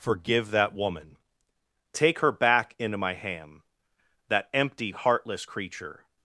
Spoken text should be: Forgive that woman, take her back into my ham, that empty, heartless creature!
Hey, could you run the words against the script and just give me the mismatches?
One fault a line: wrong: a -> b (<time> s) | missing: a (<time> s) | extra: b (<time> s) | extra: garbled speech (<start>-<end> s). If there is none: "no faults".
no faults